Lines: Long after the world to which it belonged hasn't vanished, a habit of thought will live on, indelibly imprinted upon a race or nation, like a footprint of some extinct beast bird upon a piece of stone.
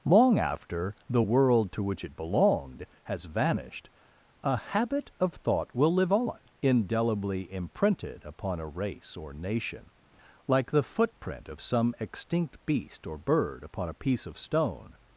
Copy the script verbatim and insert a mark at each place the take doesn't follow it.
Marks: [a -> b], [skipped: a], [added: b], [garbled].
Long after the world to which it belonged [hasn't -> has] vanished, a habit of thought will live on, indelibly imprinted upon a race or nation, like [a -> the] footprint of some extinct beast [added: or] bird upon a piece of stone.